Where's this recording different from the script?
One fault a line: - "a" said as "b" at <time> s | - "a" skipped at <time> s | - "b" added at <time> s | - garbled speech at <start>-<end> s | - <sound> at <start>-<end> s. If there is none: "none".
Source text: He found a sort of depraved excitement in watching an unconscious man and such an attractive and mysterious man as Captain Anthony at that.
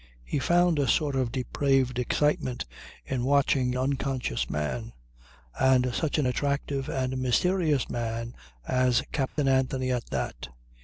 - "an" skipped at 3.8 s
- dropout at 9.3-9.4 s